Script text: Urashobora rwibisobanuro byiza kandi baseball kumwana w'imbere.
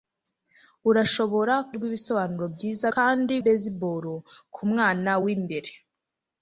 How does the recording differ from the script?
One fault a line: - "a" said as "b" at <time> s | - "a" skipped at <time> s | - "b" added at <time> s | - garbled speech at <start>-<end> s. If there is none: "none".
none